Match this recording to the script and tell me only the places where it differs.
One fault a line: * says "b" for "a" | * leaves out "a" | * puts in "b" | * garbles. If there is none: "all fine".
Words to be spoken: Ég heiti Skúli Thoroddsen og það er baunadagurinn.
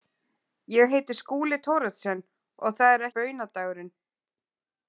all fine